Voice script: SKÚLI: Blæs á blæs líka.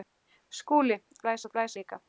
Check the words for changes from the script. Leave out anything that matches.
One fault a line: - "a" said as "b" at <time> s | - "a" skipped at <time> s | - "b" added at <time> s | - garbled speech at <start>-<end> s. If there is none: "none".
none